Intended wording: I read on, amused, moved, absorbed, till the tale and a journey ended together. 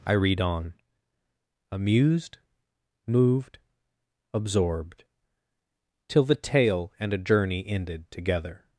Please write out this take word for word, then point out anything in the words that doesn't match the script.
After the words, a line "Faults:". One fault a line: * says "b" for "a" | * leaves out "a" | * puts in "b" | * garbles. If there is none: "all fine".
I read on, amused, moved, absorbed, till the tale and a journey ended together.
Faults:
all fine